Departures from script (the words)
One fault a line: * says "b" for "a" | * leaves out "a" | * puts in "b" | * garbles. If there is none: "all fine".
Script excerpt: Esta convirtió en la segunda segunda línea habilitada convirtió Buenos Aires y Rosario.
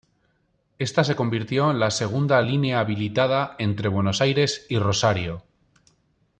* puts in "se"
* leaves out "segunda"
* says "entre" for "convirtió"